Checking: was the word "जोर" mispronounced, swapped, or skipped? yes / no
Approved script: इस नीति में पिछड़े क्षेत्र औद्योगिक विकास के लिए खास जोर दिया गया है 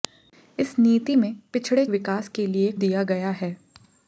yes